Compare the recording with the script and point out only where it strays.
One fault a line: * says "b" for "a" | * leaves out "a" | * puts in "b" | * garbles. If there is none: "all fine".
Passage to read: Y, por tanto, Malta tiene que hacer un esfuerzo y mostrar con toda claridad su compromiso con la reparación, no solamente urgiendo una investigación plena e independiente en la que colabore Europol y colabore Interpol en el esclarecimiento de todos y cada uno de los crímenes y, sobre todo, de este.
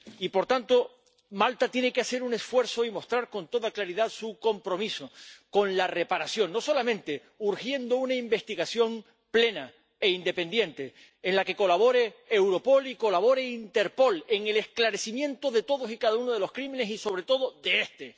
all fine